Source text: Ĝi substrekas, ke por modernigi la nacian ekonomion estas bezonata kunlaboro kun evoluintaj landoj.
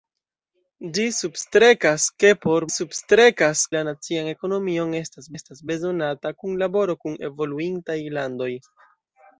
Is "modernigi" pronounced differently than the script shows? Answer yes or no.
yes